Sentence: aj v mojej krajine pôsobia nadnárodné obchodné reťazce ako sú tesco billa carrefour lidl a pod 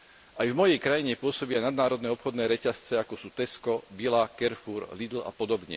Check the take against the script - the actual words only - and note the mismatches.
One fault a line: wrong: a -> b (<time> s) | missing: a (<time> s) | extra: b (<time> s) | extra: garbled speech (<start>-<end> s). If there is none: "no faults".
no faults